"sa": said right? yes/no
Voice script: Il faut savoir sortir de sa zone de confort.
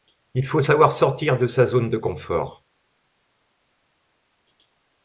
yes